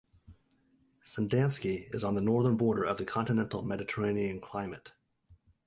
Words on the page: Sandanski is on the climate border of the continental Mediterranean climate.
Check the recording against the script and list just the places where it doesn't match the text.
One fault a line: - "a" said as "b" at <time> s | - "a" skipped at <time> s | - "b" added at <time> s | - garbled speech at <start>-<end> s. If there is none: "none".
- "climate" said as "northern" at 2.2 s